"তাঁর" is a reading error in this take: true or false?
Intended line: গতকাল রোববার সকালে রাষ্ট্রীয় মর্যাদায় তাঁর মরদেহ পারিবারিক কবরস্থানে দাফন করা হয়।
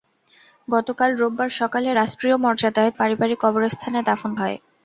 true